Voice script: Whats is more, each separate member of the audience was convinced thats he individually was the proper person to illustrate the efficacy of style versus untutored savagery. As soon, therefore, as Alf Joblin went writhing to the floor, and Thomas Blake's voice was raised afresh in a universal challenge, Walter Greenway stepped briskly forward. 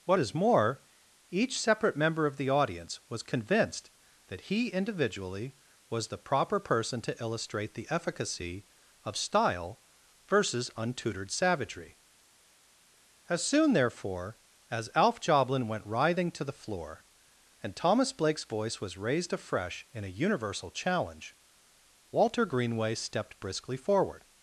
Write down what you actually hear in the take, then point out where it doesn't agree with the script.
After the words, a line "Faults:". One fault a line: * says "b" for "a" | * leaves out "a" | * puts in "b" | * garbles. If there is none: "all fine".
What is more, each separate member of the audience was convinced that he individually was the proper person to illustrate the efficacy of style versus untutored savagery. As soon, therefore, as Alf Joblin went writhing to the floor, and Thomas Blake's voice was raised afresh in a universal challenge, Walter Greenway stepped briskly forward.
Faults:
* says "What" for "Whats"
* says "that" for "thats"